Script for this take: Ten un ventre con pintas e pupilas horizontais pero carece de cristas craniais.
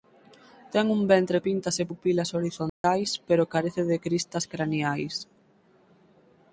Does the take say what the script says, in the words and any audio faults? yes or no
no